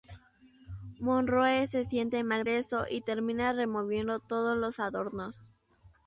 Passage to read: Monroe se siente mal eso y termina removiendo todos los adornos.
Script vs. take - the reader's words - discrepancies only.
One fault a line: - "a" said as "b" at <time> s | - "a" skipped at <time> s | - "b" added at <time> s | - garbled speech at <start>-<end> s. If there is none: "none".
none